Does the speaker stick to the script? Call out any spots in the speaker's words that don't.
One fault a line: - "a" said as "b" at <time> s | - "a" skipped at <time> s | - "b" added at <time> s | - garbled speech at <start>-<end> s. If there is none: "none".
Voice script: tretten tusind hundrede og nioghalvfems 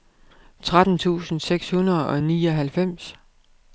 - "seks" added at 1.4 s